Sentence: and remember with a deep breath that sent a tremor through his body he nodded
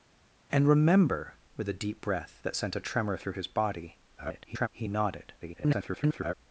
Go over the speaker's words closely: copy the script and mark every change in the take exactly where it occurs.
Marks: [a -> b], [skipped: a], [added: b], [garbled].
and remember with a deep breath that sent a tremor through his body [garbled] he nodded [garbled]